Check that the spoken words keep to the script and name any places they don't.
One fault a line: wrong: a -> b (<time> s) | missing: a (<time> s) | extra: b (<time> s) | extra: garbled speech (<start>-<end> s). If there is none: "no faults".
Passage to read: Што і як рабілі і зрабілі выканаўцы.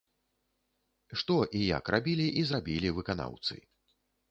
no faults